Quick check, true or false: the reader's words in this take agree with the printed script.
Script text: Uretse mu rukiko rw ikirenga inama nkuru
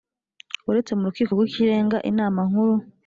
true